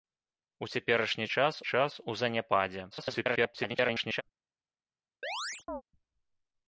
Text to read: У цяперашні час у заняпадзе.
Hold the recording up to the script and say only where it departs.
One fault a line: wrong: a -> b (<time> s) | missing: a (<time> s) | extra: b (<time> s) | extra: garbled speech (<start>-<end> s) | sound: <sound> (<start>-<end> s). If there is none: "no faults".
extra: час (1.6 s)
extra: garbled speech (2.9-4.2 s)
sound: chirp (5.2-5.8 s)